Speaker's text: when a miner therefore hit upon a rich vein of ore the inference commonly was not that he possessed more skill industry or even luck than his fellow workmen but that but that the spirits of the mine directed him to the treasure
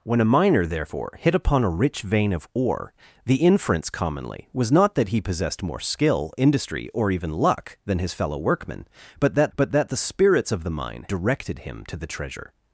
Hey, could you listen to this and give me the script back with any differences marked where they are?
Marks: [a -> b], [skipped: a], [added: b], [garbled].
when a miner therefore hit upon a rich vein of ore the inference commonly was not that he possessed more skill industry or even luck than his fellow workmen but that but that the spirits of the mine directed him to the treasure